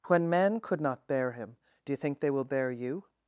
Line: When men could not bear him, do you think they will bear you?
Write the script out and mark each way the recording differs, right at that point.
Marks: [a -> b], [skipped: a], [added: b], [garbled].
When men could not bear him, do you think they will bear you?